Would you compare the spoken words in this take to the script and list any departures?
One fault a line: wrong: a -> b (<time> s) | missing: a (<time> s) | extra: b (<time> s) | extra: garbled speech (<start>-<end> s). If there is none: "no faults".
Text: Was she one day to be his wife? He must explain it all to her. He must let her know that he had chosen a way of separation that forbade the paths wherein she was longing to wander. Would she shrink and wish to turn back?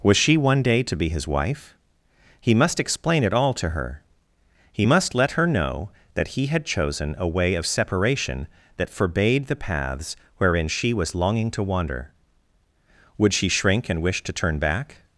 no faults